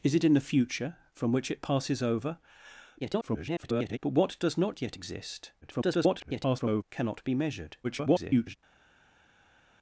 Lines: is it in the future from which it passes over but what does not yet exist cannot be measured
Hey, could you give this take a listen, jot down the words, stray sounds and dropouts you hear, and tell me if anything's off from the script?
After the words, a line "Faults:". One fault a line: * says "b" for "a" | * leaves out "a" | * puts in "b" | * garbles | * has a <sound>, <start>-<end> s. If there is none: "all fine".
is it in the future from which it passes over [garbled] but what does not yet exist [garbled] cannot be measured [garbled]
Faults:
* garbles
* garbles
* garbles